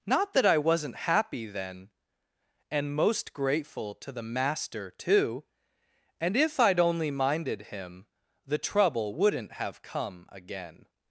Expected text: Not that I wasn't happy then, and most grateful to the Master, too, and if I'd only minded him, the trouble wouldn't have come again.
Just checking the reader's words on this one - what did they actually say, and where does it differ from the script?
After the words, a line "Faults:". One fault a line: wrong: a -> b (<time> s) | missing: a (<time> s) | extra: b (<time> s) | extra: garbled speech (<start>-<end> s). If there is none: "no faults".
Not that I wasn't happy then, and most grateful to the Master, too, and if I'd only minded him, the trouble wouldn't have come again.
Faults:
no faults